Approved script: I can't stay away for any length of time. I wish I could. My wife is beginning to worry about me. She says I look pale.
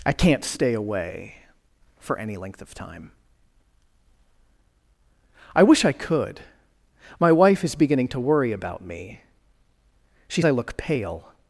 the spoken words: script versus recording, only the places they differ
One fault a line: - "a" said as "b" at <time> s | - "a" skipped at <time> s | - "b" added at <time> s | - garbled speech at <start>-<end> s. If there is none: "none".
- "says" skipped at 10.4 s